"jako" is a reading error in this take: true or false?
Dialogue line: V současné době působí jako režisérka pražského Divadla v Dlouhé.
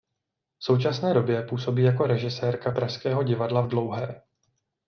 false